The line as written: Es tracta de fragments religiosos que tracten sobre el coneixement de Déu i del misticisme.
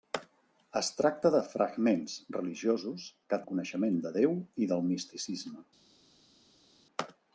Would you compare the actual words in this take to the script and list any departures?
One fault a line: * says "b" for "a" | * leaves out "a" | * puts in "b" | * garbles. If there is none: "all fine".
* leaves out "tracten sobre"